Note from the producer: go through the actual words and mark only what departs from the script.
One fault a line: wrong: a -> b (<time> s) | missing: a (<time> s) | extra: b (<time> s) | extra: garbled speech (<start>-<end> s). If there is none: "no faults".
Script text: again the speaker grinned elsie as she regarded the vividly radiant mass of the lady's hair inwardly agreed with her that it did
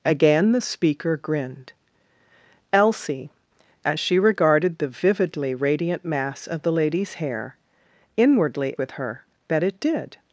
missing: agreed (8.8 s)